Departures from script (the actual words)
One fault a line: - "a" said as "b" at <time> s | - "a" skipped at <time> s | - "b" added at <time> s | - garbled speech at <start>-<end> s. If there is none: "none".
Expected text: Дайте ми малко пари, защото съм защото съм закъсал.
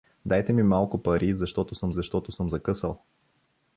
none